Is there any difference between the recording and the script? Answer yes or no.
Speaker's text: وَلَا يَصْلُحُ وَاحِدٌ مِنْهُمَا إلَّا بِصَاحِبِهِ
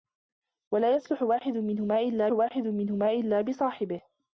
yes